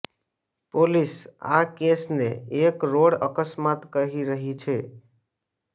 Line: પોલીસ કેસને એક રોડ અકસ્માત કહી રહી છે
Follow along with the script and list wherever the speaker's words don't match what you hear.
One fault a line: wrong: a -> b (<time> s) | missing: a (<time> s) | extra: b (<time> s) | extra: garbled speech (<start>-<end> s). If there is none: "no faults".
extra: આ (1.5 s)